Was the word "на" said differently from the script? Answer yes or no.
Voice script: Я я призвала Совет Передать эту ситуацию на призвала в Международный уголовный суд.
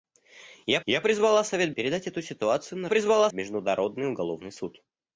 no